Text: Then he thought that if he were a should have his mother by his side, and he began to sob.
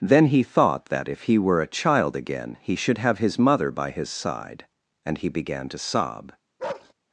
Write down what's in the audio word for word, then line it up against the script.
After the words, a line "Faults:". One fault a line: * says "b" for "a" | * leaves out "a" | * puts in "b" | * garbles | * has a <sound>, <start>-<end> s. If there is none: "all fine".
Then he thought that if he were a child again he should have his mother by his side, and he began to sob.
Faults:
* puts in "child again he"
* has a bark, 6.6-6.9 s